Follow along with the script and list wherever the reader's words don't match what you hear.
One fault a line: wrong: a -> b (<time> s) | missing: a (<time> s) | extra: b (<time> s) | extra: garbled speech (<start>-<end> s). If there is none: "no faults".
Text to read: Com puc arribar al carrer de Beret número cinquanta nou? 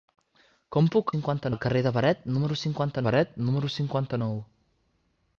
wrong: arribar -> cinquanta (1.1 s)
extra: Beret número cinquanta (3.1 s)